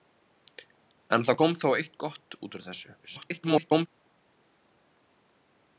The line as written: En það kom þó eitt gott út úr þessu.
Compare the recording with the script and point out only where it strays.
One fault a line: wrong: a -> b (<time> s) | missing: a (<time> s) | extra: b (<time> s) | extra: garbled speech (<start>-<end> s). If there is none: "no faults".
extra: garbled speech (3.0-3.9 s)